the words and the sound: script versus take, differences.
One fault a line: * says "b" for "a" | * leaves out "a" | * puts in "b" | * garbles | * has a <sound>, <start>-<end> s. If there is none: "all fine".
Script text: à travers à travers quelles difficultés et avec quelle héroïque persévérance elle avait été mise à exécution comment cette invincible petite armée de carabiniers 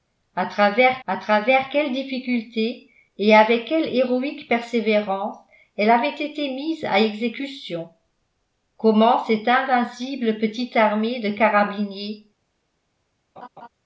* has a laugh, 13.4-13.7 s